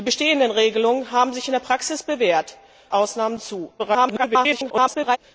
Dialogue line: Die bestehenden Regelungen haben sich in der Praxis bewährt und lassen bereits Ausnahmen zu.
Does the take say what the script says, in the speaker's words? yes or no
no